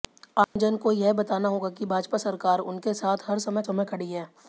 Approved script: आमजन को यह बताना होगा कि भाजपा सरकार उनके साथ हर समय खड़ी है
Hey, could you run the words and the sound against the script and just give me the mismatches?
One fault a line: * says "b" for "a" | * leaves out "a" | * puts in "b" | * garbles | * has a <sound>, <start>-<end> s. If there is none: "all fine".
* has a dropout, 0.4-0.6 s
* puts in "समय"